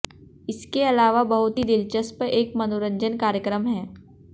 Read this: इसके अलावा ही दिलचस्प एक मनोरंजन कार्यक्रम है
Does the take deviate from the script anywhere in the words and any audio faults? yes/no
yes